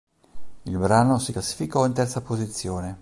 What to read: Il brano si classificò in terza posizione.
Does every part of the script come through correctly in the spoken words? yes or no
yes